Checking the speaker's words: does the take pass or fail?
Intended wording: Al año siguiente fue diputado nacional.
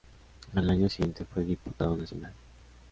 pass